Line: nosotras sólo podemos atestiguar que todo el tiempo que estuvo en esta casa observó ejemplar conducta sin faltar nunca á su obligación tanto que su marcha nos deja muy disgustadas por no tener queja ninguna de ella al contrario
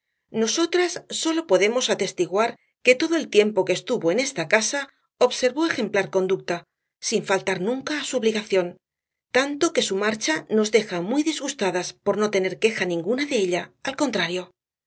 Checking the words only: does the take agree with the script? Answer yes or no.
yes